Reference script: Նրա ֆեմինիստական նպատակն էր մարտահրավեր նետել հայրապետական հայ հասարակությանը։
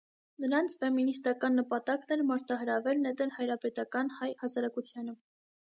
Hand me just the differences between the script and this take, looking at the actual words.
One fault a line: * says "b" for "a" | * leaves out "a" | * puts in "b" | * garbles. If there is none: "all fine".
* says "Նրանց" for "Նրա"